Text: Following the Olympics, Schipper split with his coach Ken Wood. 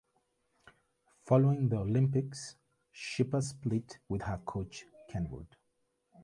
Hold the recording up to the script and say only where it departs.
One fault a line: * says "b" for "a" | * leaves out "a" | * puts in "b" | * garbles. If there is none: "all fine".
* says "her" for "his"